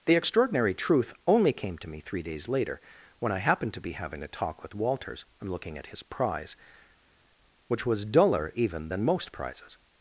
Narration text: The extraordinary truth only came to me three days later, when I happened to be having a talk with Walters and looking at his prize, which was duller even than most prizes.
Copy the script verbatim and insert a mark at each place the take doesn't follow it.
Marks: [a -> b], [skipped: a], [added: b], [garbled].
The extraordinary truth only came to me three days later, when I happened to be having a talk with Walters and looking at his prize, which was duller even than most prizes.